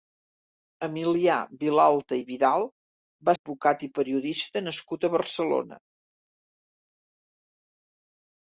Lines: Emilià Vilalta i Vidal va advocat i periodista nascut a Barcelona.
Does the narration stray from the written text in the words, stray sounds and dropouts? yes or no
no